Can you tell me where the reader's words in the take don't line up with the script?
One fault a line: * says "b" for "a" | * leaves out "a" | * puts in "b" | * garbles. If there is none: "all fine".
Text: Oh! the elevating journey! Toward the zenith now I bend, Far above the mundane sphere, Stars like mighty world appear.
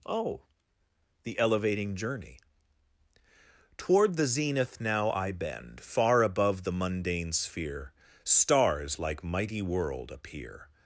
all fine